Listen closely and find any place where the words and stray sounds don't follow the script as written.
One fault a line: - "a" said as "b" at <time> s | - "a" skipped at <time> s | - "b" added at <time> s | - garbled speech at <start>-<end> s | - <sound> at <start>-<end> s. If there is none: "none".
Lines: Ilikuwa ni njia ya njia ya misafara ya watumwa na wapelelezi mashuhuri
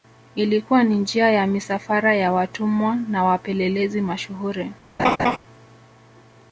- "njia ya" skipped at 1.5 s
- laugh at 5.0-5.4 s